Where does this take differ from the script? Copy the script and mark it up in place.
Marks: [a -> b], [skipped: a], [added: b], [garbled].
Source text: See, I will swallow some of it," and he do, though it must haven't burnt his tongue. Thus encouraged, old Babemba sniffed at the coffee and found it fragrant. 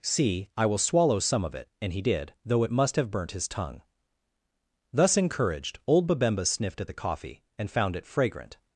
See, I will swallow some of it," and he [do, -> did] though it must [haven't -> have] burnt his tongue. Thus encouraged, old Babemba sniffed at the coffee and found it fragrant.